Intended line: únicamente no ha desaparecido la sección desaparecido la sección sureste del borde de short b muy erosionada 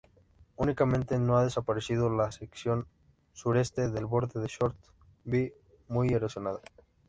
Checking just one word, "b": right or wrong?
right